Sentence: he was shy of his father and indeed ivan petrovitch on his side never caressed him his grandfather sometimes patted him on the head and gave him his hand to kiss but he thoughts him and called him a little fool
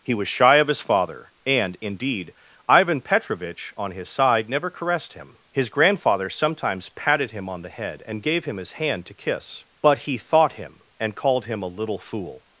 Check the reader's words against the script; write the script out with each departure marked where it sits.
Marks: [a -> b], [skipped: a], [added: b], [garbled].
he was shy of his father and indeed ivan petrovitch on his side never caressed him his grandfather sometimes patted him on the head and gave him his hand to kiss but he [thoughts -> thought] him and called him a little fool